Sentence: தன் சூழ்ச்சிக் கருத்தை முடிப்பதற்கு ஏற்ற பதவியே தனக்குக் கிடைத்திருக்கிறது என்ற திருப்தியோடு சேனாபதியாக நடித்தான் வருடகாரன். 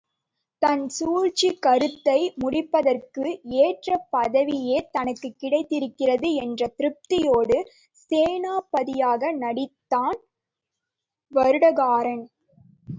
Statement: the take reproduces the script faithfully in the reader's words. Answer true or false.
true